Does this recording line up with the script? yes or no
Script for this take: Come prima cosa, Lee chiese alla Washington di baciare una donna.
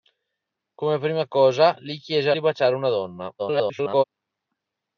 no